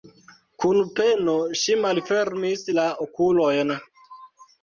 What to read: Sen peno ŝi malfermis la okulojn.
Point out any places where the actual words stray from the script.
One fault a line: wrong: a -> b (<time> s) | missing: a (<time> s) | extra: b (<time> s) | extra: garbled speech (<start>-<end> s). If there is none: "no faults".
wrong: Sen -> Kun (0.6 s)